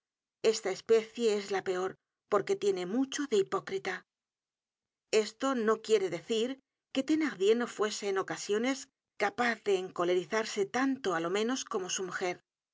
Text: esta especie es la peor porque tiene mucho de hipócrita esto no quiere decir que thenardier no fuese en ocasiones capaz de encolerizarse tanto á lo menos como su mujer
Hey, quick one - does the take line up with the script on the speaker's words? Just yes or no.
yes